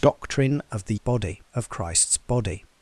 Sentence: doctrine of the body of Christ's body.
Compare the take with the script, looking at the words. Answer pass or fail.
pass